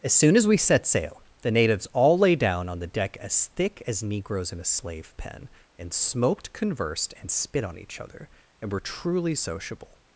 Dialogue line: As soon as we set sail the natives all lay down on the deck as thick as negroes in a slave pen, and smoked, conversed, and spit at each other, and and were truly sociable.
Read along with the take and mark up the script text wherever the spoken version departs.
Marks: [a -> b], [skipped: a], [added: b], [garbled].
As soon as we set sail the natives all lay down on the deck as thick as negroes in a slave pen, and smoked, conversed, and spit [at -> on] each other, and [skipped: and] were truly sociable.